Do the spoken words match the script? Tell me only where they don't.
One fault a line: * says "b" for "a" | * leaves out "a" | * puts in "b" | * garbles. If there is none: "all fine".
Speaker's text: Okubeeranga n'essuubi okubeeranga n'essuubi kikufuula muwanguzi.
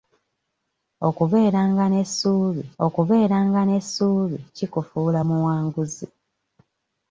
all fine